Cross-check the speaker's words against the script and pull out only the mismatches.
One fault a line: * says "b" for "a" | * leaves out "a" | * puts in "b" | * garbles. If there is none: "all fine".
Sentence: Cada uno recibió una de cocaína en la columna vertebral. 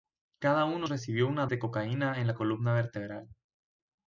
all fine